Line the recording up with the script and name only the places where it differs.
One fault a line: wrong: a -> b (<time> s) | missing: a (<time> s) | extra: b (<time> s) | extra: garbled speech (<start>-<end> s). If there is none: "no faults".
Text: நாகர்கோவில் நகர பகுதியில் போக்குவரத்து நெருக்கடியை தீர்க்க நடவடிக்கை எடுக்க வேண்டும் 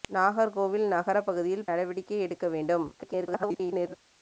missing: போக்குவரத்து நெருக்கடியை தீர்க்க (1.7 s)
extra: garbled speech (3.0-3.9 s)